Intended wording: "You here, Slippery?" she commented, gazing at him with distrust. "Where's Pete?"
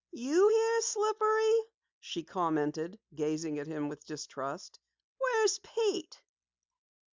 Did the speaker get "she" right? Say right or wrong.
right